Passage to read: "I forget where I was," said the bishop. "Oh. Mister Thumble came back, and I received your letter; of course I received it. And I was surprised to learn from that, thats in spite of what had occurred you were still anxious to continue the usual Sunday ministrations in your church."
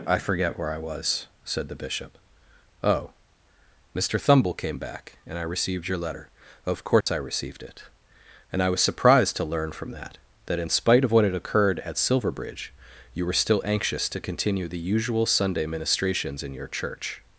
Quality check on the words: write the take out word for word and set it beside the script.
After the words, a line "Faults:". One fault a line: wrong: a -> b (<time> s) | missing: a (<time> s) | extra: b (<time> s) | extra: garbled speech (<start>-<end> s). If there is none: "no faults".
"I forget where I was," said the bishop. "Oh. Mister Thumble came back, and I received your letter; of course I received it. And I was surprised to learn from that, that in spite of what had occurred at Silverbridge, you were still anxious to continue the usual Sunday ministrations in your church."
Faults:
wrong: thats -> that (10.5 s)
extra: at Silverbridge (11.8 s)